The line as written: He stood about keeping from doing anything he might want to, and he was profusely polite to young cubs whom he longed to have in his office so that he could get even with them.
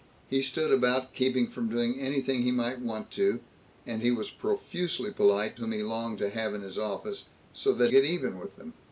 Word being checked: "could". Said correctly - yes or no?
no